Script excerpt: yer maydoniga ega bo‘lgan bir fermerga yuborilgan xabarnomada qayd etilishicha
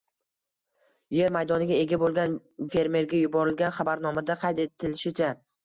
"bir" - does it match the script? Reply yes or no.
no